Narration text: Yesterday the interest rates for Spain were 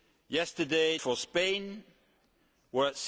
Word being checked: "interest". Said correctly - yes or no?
no